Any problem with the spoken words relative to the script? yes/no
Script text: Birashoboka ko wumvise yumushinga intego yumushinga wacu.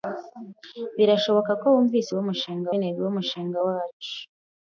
no